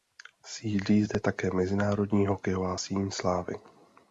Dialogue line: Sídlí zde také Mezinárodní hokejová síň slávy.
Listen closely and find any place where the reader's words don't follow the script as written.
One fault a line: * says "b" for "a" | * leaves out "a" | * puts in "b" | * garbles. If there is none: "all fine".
all fine